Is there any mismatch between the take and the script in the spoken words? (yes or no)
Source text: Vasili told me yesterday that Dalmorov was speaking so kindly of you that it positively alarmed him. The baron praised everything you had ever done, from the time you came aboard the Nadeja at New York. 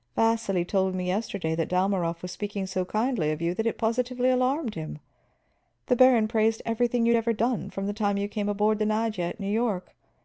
no